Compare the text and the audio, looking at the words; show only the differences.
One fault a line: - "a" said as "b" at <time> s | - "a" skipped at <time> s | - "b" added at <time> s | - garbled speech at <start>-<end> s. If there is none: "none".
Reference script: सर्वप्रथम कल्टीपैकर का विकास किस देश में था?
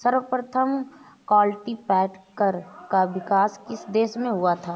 - "हुआ" added at 4.3 s